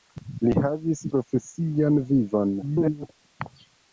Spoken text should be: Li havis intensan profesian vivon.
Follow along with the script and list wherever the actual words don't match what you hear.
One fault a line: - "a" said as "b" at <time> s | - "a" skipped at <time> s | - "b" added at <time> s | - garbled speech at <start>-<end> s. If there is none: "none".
- "intensan" skipped at 1.0 s
- garbled speech at 2.6-3.1 s